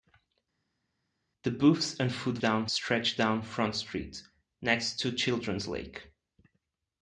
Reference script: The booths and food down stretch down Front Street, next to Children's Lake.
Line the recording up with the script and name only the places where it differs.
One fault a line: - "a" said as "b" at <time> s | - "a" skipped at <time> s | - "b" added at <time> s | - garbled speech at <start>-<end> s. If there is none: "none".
none